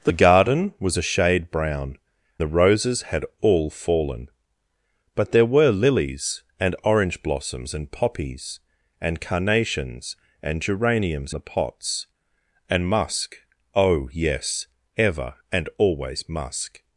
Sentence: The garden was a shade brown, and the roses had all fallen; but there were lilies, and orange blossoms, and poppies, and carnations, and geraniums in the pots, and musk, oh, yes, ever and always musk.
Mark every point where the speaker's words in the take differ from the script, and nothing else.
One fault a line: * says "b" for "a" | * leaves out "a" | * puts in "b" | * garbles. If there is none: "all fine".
* leaves out "and"
* leaves out "in"